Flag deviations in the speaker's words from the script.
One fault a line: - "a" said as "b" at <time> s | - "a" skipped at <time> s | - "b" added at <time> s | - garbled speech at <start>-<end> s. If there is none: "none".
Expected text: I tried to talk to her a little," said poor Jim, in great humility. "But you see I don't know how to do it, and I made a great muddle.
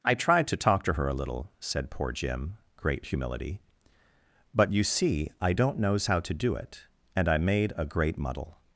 - "in" skipped at 2.6 s
- "know" said as "knows" at 5.8 s